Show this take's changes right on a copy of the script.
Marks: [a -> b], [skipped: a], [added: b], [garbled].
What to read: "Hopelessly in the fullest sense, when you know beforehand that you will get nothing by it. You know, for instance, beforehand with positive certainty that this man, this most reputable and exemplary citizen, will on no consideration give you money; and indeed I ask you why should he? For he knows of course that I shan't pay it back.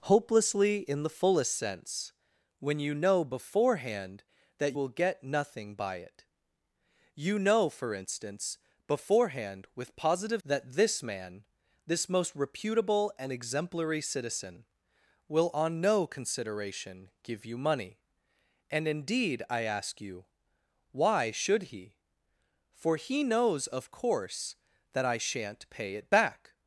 "Hopelessly in the fullest sense, when you know beforehand that [skipped: you] will get nothing by it. You know, for instance, beforehand with positive [skipped: certainty] that this man, this most reputable and exemplary citizen, will on no consideration give you money; and indeed I ask you why should he? For he knows of course that I shan't pay it back.